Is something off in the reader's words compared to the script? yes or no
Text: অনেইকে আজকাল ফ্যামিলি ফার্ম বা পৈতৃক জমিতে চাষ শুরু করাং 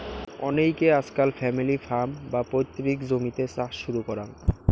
no